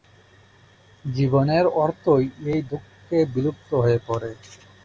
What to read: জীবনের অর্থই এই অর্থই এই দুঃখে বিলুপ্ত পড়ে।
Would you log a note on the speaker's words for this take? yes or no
yes